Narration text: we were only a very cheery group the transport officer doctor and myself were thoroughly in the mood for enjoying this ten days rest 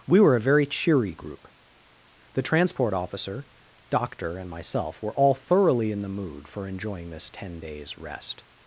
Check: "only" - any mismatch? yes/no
yes